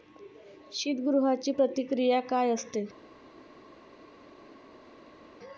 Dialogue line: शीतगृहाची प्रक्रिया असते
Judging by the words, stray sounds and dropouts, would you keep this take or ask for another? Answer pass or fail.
fail